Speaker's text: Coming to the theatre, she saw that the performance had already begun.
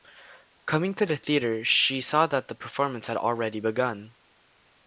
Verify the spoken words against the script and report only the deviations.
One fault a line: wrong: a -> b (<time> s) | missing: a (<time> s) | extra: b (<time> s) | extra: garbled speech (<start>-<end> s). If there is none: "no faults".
no faults